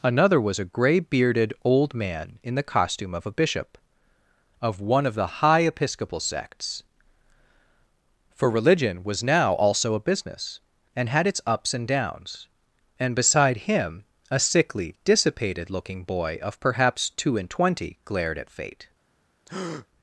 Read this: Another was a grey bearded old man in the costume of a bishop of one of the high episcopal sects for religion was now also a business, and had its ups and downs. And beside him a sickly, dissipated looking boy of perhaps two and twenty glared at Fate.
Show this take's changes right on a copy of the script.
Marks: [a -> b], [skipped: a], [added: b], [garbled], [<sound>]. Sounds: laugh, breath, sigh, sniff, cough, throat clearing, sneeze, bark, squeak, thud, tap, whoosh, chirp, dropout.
Another was a grey bearded old man in the costume of a bishop of one of the high episcopal sects for religion was now also a business, and had its ups and downs. And beside him a sickly, dissipated looking boy of perhaps two and twenty glared at Fate. [breath]